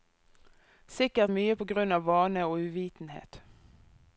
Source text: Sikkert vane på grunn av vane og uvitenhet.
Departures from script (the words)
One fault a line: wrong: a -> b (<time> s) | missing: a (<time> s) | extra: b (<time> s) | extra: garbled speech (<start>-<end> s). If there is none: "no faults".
wrong: vane -> mye (1.3 s)